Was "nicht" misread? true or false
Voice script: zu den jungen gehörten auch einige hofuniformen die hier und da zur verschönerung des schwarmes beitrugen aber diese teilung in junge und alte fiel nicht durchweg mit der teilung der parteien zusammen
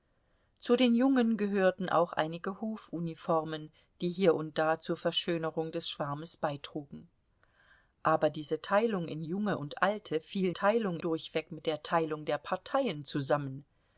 true